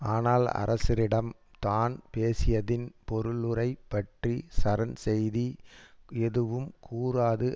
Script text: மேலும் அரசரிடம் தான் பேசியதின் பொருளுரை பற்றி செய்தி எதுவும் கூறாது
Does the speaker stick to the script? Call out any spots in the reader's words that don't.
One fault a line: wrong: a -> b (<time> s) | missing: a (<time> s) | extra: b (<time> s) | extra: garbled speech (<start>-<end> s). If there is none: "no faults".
wrong: மேலும் -> ஆனால் (0.0 s)
extra: சரண் (4.6 s)